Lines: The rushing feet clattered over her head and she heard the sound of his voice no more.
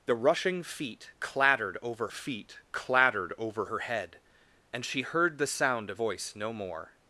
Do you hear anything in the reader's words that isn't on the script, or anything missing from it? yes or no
yes